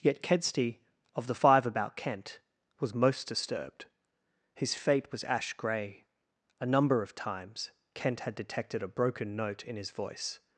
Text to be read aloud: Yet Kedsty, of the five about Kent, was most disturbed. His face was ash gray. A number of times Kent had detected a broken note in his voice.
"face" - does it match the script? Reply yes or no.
no